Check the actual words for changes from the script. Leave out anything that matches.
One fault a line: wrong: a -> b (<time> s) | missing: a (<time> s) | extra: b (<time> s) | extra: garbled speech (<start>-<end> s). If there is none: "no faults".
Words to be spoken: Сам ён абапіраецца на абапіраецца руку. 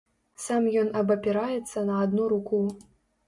wrong: абапіраецца -> адну (2.0 s)